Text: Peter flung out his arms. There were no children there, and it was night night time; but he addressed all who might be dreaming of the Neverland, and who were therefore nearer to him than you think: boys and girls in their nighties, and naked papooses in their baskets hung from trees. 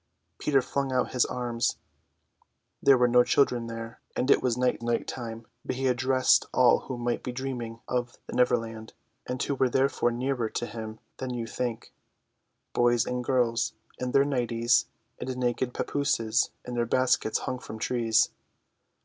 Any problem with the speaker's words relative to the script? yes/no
no